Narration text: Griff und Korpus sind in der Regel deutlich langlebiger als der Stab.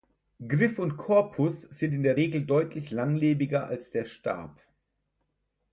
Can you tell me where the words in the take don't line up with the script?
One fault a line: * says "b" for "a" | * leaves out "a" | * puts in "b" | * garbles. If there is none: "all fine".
all fine